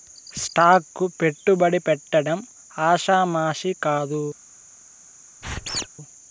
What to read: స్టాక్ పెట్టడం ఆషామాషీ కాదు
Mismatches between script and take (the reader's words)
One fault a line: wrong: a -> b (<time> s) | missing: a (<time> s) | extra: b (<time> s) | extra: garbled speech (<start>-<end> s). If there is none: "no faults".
extra: కు పెట్టుబడి (0.9 s)